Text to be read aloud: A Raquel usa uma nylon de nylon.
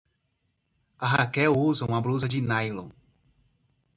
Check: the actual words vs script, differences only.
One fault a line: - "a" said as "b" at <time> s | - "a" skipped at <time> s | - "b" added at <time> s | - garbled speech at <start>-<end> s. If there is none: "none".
- "nylon" said as "blusa" at 2.0 s